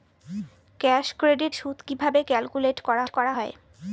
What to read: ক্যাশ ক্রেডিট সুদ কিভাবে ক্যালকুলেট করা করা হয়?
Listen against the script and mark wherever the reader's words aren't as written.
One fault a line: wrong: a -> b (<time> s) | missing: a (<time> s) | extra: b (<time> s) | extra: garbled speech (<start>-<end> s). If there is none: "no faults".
no faults